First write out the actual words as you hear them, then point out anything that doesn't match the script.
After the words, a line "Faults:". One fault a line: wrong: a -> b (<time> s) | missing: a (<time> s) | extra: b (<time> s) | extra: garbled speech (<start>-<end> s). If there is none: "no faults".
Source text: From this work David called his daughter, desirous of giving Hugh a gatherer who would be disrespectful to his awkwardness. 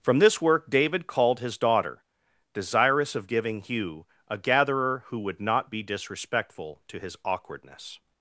From this work David called his daughter, desirous of giving Hugh a gatherer who would not be disrespectful to his awkwardness.
Faults:
extra: not (5.4 s)